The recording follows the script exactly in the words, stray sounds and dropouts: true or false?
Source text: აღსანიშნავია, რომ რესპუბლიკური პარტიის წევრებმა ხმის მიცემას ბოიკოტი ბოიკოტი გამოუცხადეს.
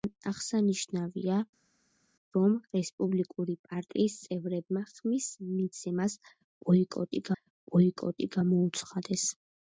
true